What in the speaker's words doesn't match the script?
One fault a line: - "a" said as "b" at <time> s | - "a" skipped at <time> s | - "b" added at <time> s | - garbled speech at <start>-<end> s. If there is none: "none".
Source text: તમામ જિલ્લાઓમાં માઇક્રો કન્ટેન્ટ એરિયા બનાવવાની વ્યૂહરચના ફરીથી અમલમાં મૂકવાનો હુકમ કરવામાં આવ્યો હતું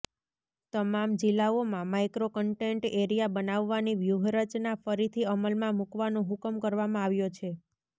- "હતું" said as "છે" at 7.3 s